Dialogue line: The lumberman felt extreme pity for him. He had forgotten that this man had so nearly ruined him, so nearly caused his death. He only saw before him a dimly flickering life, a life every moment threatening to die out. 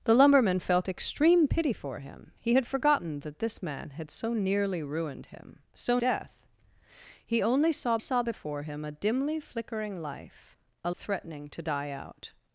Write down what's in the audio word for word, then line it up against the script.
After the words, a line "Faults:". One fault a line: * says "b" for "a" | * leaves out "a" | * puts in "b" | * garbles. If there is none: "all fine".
The lumberman felt extreme pity for him. He had forgotten that this man had so nearly ruined him, so death. He only saw saw before him a dimly flickering life, a threatening to die out.
Faults:
* leaves out "nearly caused his"
* puts in "saw"
* leaves out "life every moment"